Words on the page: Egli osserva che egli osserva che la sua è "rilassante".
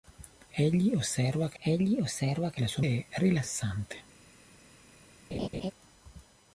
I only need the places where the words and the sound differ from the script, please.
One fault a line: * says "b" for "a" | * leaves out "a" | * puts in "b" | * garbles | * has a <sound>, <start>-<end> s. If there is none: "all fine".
* has a laugh, 5.3-5.7 s